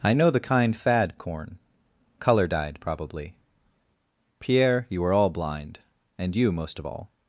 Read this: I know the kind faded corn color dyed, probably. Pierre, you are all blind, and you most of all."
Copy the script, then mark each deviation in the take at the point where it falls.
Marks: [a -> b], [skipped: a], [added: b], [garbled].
I know the kind [faded -> fad] corn color dyed, probably. Pierre, you are all blind, and you most of all."